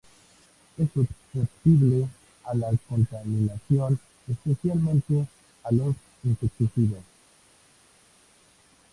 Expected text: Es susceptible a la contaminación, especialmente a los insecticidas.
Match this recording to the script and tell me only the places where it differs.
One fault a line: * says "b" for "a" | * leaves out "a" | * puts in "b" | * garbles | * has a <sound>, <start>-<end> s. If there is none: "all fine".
all fine